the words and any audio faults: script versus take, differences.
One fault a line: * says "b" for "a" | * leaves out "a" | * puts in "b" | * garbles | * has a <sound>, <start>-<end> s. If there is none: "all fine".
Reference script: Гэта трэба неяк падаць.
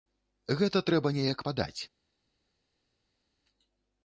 all fine